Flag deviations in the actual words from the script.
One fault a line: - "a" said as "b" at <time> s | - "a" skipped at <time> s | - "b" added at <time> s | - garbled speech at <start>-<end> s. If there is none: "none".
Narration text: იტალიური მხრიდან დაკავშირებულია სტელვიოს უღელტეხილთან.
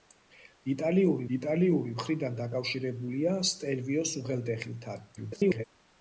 - "იტალიური" added at 1.4 s
- garbled speech at 5.2-5.6 s